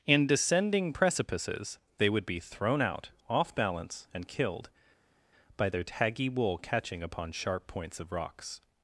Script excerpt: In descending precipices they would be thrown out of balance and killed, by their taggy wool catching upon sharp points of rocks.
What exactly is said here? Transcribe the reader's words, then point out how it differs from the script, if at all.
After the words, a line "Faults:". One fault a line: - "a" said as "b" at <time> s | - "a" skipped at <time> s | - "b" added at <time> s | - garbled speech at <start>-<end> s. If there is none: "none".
In descending precipices they would be thrown out off balance and killed, by their taggy wool catching upon sharp points of rocks.
Faults:
- "of" said as "off" at 3.3 s